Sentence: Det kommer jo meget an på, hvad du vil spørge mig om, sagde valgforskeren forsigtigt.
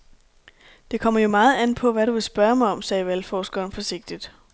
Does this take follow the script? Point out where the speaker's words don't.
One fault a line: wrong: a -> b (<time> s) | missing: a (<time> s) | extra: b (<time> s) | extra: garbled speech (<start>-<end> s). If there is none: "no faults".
no faults